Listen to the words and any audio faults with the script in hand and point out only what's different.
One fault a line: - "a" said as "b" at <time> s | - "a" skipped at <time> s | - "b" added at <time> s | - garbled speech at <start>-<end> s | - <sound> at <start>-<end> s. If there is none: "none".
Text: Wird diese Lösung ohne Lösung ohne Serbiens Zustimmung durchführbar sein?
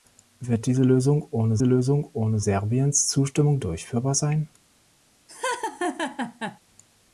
- laugh at 5.3-6.6 s